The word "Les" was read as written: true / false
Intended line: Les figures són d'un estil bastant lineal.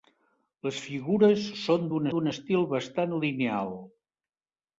true